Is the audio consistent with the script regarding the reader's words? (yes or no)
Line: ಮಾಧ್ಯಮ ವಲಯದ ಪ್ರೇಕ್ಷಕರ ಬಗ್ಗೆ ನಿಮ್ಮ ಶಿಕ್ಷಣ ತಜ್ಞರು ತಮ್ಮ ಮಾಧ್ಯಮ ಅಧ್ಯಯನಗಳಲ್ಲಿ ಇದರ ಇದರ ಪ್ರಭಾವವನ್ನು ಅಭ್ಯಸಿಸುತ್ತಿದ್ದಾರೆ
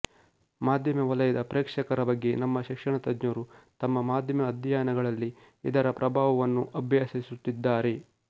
no